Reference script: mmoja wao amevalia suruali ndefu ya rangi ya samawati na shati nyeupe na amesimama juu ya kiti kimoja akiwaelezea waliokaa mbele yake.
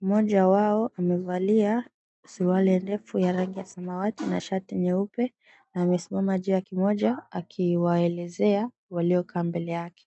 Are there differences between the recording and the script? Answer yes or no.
yes